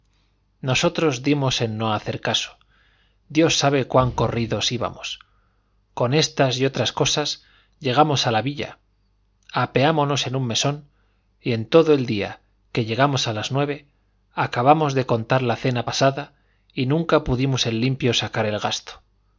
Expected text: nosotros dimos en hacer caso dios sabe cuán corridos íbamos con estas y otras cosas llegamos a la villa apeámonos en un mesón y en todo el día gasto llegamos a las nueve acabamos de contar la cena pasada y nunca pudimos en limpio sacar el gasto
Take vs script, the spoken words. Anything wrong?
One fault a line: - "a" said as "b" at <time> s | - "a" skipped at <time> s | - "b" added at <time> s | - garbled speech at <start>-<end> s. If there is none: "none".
- "no" added at 1.8 s
- "gasto" said as "que" at 12.7 s